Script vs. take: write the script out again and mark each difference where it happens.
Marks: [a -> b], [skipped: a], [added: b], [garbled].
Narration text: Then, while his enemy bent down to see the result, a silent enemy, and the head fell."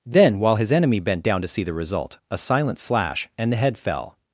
Then, while his enemy bent down to see the result, a silent [enemy, -> slash] and the head fell."